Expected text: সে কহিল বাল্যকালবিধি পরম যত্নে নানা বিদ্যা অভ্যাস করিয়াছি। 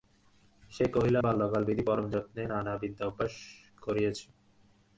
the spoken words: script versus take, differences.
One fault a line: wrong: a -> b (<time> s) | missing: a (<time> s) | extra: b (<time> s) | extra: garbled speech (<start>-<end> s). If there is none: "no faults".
no faults